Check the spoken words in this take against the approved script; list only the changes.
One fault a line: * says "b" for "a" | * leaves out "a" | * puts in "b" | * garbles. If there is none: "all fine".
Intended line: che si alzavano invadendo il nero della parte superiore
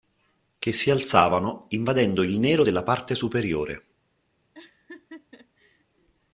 all fine